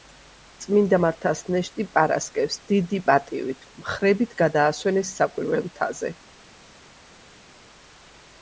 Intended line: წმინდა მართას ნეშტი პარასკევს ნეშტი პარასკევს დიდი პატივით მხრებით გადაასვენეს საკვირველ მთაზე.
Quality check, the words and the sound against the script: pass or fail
fail